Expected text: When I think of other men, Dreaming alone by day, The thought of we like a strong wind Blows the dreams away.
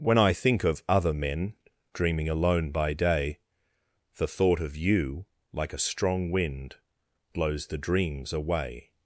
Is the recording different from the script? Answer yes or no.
yes